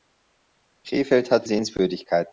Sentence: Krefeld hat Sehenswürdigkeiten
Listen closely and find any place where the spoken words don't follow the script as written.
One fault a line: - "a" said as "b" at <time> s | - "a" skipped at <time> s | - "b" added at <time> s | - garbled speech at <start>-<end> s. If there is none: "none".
none